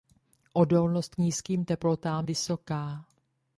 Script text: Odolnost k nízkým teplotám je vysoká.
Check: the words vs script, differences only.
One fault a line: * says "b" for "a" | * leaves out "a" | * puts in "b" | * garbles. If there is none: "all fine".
* leaves out "k"
* leaves out "je"